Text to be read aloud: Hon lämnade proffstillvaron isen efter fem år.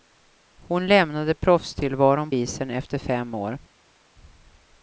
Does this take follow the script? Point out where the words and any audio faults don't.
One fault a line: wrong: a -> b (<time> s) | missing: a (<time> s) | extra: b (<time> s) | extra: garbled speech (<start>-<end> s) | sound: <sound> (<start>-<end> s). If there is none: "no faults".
no faults